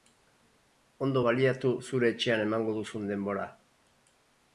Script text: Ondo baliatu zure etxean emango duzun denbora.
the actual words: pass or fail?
pass